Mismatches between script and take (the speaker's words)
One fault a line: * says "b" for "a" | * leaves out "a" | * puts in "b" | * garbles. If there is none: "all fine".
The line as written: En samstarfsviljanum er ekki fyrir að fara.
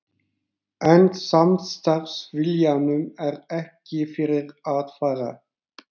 all fine